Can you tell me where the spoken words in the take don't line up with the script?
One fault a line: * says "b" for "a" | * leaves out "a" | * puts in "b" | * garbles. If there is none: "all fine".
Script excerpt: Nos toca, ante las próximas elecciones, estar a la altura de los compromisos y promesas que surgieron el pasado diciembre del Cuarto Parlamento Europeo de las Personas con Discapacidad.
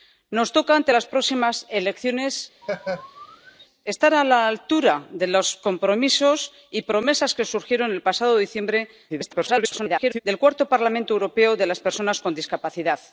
* garbles